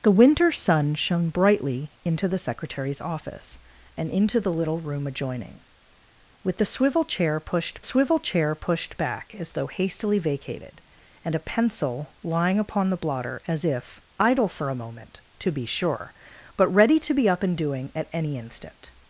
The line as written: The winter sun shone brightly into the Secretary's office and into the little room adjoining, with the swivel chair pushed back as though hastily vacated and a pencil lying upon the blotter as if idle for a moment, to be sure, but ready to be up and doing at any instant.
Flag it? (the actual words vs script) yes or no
yes